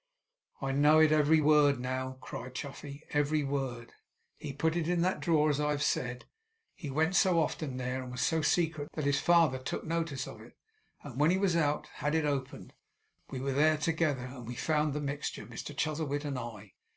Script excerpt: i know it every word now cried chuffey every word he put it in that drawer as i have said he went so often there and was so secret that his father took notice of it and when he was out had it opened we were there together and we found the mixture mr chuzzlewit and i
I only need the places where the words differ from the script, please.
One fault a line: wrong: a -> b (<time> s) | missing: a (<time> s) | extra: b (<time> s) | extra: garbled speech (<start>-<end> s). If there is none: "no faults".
no faults